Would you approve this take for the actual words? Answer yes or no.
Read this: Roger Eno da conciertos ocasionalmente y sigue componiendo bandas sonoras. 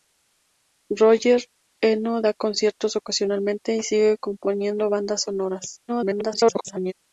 no